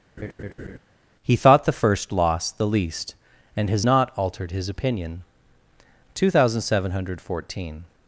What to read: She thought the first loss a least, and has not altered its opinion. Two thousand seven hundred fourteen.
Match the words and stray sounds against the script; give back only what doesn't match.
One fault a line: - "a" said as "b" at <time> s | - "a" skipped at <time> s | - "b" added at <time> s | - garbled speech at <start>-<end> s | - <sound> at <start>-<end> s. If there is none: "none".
- laugh at 0.2-0.8 s
- "She" said as "He" at 1.2 s
- "a" said as "the" at 2.5 s
- "its" said as "his" at 4.5 s